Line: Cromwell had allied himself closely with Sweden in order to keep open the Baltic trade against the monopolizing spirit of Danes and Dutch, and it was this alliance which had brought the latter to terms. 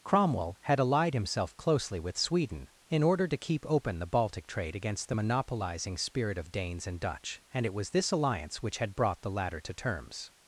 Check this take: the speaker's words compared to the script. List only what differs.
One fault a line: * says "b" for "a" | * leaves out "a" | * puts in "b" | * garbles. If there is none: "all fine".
all fine